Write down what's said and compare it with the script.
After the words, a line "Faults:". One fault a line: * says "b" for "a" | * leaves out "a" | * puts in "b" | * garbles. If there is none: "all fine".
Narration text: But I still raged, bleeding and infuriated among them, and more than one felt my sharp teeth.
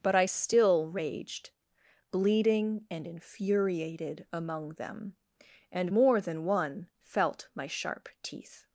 But I still raged, bleeding and infuriated among them, and more than one felt my sharp teeth.
Faults:
all fine